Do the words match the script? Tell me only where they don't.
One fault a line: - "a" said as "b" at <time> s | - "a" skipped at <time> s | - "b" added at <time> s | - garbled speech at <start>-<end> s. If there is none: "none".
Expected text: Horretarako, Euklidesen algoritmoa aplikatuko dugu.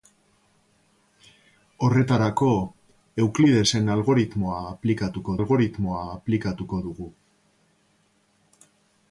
- "algoritmoa aplikatuko" added at 5.4 s